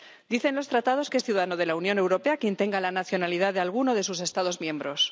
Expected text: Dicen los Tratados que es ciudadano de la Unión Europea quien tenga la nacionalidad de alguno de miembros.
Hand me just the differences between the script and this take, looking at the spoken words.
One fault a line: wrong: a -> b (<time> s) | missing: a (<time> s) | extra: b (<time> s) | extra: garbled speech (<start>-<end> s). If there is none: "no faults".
extra: sus Estados (4.0 s)